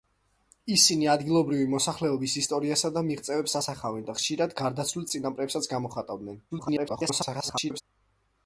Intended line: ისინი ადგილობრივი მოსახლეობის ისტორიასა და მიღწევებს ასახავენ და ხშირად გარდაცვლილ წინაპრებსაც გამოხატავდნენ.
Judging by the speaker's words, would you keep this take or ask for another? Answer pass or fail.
fail